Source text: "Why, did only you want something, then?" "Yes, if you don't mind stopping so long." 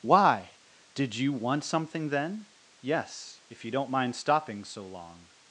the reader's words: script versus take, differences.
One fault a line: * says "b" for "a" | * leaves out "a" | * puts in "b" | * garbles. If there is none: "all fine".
* leaves out "only"